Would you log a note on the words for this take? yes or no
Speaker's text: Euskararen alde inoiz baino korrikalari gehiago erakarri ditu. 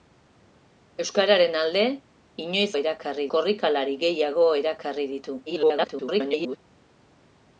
yes